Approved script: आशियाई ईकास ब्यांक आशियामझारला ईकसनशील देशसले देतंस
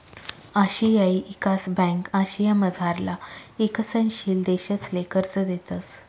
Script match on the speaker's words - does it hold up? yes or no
no